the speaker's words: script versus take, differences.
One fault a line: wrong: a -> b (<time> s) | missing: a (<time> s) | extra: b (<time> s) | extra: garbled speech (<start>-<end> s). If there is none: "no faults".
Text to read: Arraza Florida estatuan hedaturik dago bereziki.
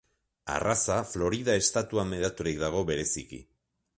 no faults